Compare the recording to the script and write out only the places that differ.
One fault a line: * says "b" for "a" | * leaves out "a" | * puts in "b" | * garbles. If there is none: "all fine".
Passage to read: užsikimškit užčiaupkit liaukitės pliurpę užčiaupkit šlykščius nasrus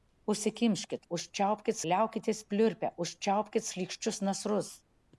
all fine